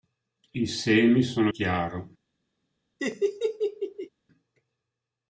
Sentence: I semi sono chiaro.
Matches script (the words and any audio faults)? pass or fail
fail